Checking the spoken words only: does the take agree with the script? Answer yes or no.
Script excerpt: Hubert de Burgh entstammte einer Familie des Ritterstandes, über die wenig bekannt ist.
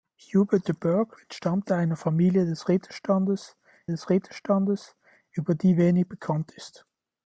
no